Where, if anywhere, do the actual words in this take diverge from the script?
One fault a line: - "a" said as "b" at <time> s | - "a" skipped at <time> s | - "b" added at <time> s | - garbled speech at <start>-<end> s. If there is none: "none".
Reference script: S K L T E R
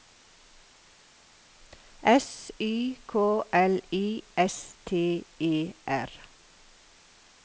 - "Y" added at 2.6 s
- "I S" added at 3.9 s